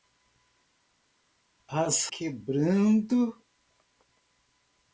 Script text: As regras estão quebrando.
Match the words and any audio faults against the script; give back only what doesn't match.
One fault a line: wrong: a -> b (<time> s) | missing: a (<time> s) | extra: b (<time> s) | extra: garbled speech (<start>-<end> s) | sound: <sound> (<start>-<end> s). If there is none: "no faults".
missing: regras estão (2.1 s)